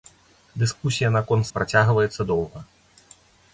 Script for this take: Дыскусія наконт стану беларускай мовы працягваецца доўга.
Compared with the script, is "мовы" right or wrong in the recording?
wrong